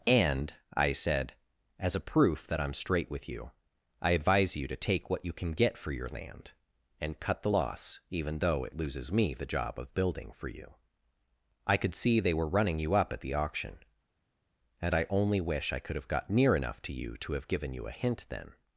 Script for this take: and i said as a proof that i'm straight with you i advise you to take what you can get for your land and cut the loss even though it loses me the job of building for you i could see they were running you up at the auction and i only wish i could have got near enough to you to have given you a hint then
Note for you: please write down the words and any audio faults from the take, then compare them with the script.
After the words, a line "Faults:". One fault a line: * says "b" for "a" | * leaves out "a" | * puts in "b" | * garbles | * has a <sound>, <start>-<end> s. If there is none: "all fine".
and i said as a proof that i'm straight with you i advise you to take what you can get for your land and cut the loss even though it loses me the job of building for you i could see they were running you up at the auction and i only wish i could have got near enough to you to have given you a hint then
Faults:
all fine